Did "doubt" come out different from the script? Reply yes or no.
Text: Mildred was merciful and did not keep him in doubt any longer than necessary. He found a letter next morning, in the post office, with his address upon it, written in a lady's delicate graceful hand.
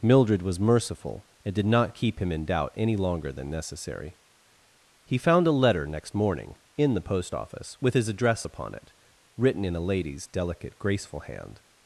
no